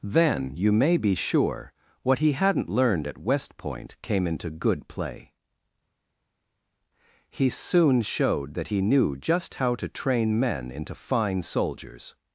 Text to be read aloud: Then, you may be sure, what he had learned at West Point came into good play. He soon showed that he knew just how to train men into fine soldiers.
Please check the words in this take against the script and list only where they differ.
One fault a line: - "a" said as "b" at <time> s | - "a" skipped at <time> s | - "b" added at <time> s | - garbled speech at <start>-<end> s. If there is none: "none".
- "had" said as "hadn't" at 2.3 s